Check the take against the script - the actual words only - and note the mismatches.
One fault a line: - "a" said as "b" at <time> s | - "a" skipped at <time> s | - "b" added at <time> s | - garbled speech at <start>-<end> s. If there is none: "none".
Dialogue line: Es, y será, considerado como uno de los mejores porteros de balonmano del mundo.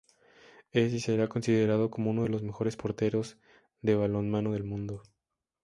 none